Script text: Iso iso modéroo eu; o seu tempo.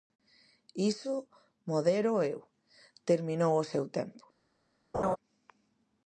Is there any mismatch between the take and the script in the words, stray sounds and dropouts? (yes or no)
yes